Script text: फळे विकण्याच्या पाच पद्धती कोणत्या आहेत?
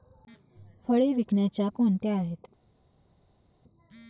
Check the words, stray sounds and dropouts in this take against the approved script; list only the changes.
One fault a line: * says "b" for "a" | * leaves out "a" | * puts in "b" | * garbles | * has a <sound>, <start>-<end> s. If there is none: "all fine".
* leaves out "पाच पद्धती"